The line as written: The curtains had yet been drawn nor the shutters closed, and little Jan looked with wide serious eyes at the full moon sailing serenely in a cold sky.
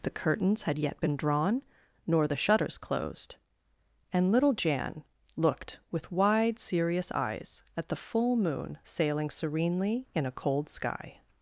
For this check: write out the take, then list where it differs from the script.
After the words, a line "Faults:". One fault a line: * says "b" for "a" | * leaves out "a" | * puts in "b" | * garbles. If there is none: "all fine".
The curtains had yet been drawn nor the shutters closed, and little Jan looked with wide serious eyes at the full moon sailing serenely in a cold sky.
Faults:
all fine